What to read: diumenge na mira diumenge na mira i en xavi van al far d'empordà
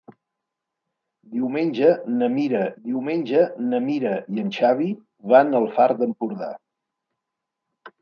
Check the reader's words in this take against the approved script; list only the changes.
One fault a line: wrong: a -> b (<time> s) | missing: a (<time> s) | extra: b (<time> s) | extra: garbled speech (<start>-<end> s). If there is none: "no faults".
no faults